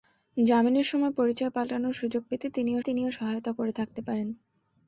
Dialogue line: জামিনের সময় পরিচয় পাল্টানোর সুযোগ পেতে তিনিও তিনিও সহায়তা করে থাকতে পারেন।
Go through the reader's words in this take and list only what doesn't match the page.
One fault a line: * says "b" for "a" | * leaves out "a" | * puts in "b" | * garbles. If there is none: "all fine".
all fine